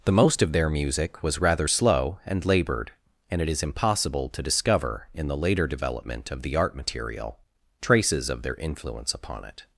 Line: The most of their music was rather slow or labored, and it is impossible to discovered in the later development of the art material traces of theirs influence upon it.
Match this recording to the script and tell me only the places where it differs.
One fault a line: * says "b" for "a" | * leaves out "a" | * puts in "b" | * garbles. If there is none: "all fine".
* says "and" for "or"
* says "discover" for "discovered"
* says "their" for "theirs"